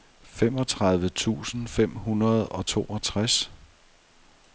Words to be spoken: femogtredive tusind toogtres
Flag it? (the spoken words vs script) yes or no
yes